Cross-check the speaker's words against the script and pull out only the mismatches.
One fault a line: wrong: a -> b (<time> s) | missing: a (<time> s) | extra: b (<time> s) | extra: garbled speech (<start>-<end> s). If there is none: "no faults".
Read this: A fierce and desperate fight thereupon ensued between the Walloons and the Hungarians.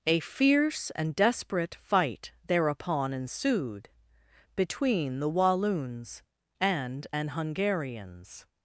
wrong: the -> an (7.1 s)